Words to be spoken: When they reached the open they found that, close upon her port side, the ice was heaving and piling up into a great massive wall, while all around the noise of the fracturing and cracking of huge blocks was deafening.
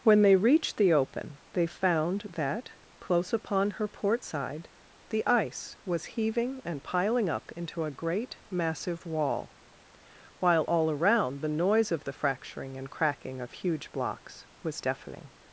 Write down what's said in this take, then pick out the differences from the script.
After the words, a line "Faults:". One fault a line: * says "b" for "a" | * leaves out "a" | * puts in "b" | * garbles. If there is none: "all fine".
When they reached the open they found that, close upon her port side, the ice was heaving and piling up into a great massive wall, while all around the noise of the fracturing and cracking of huge blocks was deafening.
Faults:
all fine